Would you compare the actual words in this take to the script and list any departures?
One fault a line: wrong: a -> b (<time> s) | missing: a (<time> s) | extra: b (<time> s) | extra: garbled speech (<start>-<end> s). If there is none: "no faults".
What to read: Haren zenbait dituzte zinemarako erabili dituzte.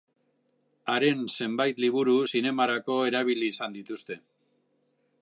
wrong: dituzte -> liburu (1.9 s)
extra: izan (3.6 s)